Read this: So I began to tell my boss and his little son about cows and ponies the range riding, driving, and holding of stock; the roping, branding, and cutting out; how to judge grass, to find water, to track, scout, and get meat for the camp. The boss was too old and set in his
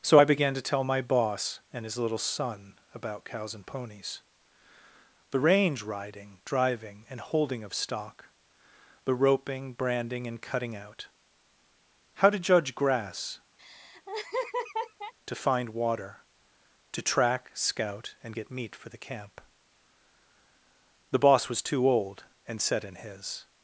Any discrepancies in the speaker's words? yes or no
no